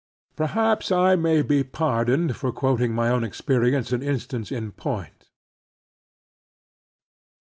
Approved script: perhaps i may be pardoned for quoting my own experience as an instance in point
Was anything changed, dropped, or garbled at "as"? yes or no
yes